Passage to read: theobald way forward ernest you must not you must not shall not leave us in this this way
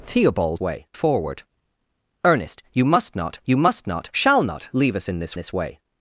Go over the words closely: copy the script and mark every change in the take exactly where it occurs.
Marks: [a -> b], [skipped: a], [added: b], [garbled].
theobald way forward ernest you must not you must not shall not leave us in this this way